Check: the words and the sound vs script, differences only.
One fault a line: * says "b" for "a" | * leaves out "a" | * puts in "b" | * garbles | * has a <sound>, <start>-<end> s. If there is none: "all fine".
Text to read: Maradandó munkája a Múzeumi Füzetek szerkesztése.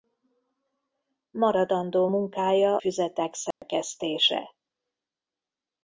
* leaves out "a Múzeumi"
* has a dropout, 3.5-3.6 s